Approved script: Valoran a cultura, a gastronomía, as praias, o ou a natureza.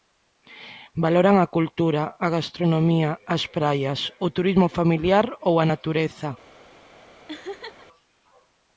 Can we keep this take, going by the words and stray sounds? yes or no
no